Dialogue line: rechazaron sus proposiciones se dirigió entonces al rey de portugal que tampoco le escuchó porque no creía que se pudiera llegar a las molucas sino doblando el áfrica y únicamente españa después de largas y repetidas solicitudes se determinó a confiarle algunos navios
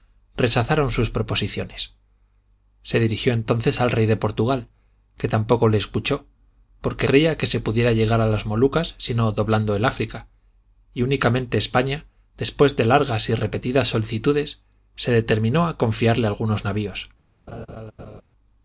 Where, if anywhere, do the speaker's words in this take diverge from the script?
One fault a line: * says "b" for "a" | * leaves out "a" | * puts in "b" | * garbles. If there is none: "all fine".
* leaves out "no"